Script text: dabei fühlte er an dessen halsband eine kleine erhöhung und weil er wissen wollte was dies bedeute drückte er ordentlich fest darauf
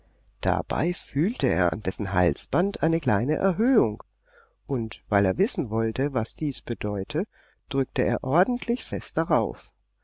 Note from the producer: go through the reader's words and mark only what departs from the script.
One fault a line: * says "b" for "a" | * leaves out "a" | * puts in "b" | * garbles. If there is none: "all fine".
all fine